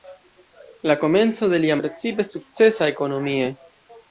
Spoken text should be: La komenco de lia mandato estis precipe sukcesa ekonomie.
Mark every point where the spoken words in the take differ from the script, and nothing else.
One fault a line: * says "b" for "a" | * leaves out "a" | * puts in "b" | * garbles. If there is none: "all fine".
* leaves out "mandato estis"